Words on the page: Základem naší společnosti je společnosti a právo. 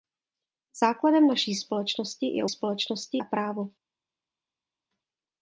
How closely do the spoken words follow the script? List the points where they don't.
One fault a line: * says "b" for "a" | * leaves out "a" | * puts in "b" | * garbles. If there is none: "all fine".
all fine